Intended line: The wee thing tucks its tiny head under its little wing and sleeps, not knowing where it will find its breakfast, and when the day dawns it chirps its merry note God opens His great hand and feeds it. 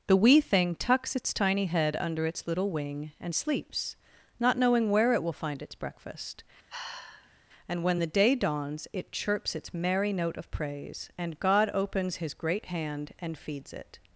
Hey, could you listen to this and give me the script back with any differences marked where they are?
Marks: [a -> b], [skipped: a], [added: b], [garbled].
The wee thing tucks its tiny head under its little wing and sleeps, not knowing where it will find its breakfast, and when the day dawns it chirps its merry note [added: of praise and] God opens His great hand and feeds it.